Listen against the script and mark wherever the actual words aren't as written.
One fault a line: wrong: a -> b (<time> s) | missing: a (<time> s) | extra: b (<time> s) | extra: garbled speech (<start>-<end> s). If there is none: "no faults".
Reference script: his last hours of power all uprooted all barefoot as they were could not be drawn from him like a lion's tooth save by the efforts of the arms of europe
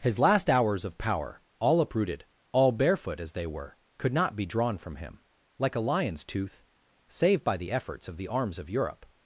no faults